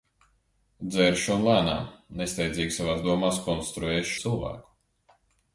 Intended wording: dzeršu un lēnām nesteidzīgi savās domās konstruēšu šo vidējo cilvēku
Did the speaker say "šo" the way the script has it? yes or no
no